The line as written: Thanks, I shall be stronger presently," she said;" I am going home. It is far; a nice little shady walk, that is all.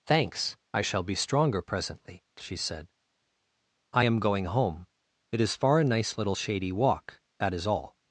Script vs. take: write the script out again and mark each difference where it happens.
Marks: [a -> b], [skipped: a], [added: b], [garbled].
Thanks, I shall be stronger presently," she said;" I am going home. It is far; a nice little shady walk, that is all.